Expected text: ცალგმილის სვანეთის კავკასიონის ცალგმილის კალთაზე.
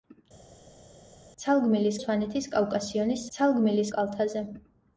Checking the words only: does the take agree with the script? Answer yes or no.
yes